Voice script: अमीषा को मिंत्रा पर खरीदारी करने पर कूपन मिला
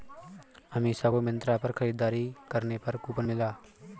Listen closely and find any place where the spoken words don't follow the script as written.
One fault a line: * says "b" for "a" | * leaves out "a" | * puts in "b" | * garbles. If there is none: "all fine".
all fine